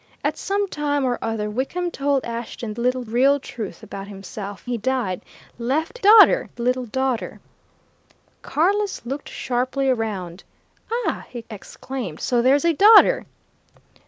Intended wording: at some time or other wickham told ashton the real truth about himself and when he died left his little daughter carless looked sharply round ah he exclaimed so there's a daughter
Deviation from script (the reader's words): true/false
true